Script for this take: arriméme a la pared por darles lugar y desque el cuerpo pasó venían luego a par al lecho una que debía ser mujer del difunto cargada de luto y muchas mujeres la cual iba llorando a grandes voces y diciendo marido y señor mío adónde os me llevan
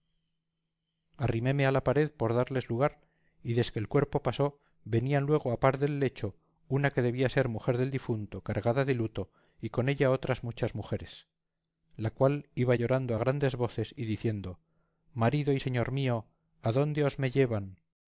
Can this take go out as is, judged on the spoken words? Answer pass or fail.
fail